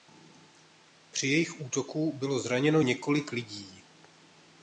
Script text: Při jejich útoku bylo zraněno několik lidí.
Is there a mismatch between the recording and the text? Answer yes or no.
no